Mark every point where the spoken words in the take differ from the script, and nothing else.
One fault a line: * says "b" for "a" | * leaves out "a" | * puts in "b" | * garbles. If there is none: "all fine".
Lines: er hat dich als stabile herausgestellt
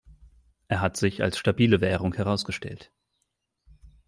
* says "sich" for "dich"
* puts in "währung"